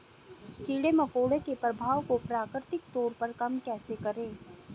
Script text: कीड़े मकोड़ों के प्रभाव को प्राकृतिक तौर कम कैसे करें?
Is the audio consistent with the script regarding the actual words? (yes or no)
no